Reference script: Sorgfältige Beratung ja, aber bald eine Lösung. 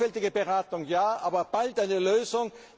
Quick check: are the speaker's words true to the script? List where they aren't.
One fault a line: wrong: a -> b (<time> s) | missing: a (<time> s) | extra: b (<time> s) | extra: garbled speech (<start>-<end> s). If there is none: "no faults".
no faults